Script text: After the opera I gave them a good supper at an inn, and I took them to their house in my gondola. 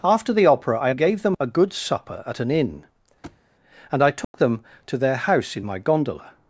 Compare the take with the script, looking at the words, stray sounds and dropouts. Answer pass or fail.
fail